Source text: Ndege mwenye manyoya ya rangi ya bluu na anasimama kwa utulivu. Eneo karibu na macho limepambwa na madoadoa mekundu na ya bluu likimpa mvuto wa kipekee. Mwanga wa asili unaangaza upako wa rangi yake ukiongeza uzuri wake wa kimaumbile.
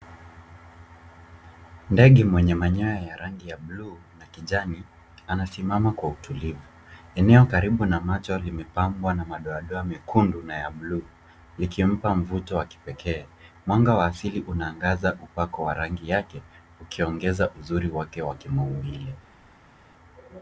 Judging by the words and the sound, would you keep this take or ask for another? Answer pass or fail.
fail